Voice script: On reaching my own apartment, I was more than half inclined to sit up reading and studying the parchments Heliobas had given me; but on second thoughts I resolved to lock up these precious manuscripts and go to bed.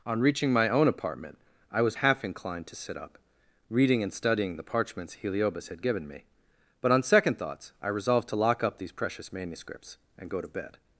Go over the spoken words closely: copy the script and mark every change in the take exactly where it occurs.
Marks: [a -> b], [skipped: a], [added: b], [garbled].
On reaching my own apartment, I was [skipped: more than] half inclined to sit up reading and studying the parchments Heliobas had given me; but on second thoughts I resolved to lock up these precious manuscripts and go to bed.